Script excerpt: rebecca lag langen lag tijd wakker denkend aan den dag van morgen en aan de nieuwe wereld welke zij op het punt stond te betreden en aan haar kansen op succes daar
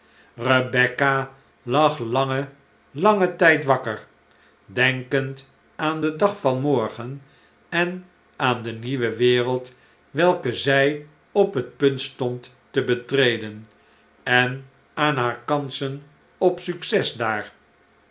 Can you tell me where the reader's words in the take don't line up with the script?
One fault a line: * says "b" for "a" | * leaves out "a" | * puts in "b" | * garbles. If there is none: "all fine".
* says "langen" for "lag"